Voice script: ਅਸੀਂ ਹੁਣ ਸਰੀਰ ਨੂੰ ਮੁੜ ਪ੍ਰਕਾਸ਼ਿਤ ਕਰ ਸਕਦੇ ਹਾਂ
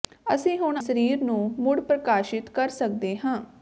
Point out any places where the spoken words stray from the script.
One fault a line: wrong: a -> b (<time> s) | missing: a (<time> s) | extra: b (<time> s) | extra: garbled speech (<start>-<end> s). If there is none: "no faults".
no faults